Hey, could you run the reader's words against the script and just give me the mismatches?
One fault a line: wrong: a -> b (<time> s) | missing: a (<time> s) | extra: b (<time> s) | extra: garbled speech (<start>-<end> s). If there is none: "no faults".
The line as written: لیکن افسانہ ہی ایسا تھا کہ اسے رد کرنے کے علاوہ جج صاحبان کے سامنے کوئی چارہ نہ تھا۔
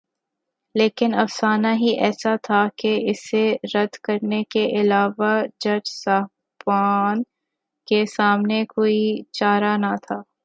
no faults